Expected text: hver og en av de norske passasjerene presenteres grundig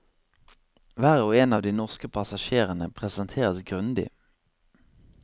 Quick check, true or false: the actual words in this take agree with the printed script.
true